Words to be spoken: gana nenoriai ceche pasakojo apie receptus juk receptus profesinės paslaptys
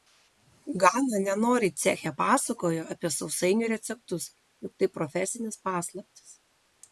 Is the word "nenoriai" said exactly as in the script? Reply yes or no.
yes